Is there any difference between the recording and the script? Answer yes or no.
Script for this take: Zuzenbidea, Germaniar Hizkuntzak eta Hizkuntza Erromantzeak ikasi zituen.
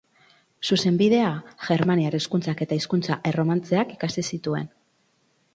no